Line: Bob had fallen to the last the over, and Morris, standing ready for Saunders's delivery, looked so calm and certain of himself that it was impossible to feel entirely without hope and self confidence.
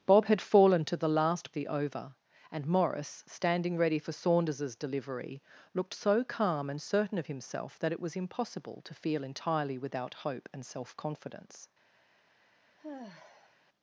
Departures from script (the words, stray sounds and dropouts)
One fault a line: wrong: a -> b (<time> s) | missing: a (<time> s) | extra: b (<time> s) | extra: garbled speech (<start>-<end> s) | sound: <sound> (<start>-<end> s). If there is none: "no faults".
sound: sigh (12.8-13.6 s)